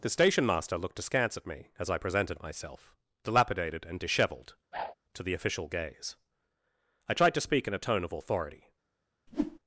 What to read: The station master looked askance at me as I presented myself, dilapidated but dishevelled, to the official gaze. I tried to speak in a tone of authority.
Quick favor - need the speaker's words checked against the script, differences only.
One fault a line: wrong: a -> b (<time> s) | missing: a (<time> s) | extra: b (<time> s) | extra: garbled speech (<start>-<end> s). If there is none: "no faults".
wrong: but -> and (3.9 s)